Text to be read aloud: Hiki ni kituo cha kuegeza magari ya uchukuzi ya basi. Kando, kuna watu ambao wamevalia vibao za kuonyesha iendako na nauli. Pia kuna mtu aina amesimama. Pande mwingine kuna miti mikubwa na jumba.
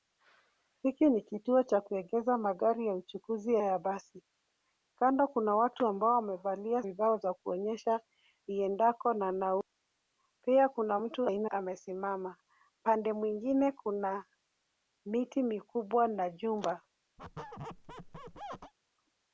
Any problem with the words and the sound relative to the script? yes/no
yes